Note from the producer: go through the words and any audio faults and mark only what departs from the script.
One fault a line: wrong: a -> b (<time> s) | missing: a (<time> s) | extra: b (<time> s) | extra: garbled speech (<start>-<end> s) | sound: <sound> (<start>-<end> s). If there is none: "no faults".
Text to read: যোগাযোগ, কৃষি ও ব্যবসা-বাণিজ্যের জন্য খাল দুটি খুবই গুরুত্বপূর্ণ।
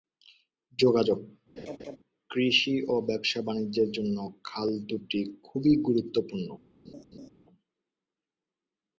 sound: laugh (1.6-2.0 s)
sound: laugh (6.8-7.3 s)